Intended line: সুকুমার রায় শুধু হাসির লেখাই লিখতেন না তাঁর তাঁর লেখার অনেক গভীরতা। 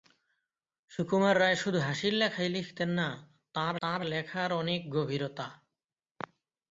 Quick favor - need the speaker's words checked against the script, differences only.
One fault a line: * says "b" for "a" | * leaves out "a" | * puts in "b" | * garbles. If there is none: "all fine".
all fine